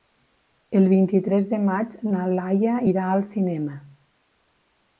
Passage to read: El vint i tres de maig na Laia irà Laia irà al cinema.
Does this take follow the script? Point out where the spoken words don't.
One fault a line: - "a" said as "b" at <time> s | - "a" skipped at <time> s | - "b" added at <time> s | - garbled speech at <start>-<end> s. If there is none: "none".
- "Laia irà" skipped at 3.1 s